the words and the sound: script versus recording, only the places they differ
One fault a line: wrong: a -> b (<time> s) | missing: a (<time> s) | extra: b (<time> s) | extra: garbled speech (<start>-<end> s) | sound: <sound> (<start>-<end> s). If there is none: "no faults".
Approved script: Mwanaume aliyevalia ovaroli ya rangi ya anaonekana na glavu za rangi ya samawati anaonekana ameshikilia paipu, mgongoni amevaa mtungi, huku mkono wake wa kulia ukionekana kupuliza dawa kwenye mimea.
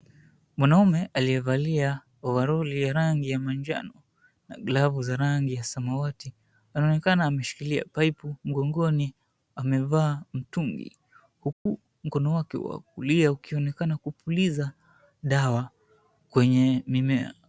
wrong: anaonekana -> manjano (3.4 s)
sound: dropout (11.5-11.7 s)